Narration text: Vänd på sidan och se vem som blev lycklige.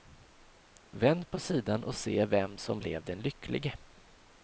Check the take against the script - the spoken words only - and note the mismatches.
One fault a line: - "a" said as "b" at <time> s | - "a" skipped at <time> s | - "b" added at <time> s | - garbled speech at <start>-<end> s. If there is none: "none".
- "den" added at 3.0 s